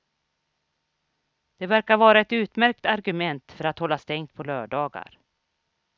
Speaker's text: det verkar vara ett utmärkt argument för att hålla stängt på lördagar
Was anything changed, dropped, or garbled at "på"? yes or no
no